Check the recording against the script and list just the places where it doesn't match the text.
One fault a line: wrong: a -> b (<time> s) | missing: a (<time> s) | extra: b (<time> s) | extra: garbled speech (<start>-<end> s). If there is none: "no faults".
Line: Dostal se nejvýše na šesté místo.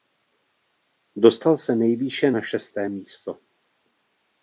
no faults